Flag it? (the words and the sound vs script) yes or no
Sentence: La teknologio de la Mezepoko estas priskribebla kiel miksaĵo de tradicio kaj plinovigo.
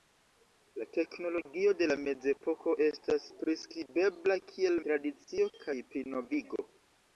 yes